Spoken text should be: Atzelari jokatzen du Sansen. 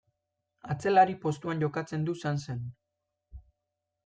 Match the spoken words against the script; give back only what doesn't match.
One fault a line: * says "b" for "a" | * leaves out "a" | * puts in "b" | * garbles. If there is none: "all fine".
* puts in "postuan"